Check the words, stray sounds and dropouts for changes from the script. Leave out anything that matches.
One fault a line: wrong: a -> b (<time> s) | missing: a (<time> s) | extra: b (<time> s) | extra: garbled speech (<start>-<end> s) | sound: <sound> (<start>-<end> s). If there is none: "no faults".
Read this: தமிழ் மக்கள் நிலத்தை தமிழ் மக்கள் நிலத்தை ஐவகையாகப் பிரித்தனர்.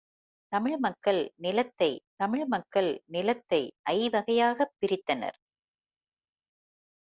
no faults